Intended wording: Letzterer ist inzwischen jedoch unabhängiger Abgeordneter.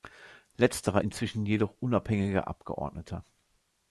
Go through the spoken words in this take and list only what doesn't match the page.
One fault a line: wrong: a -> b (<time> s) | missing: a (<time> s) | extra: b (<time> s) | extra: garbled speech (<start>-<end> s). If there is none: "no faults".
missing: ist (1.0 s)